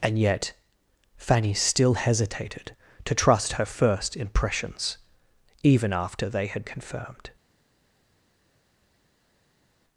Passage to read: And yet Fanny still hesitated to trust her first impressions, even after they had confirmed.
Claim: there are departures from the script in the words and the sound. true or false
false